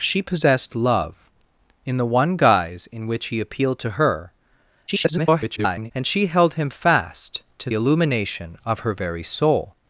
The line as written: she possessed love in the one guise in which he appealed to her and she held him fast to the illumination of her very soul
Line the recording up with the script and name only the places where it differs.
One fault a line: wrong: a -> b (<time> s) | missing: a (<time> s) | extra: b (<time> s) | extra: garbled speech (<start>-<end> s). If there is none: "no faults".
extra: garbled speech (4.9-5.9 s)
missing: the (7.7 s)